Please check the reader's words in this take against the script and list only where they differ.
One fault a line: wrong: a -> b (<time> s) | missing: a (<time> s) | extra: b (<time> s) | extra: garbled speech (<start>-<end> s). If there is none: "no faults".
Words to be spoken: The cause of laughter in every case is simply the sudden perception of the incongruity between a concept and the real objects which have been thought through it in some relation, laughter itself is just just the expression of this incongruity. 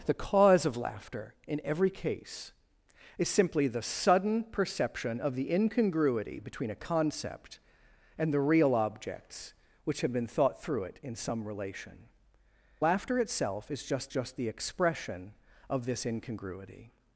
no faults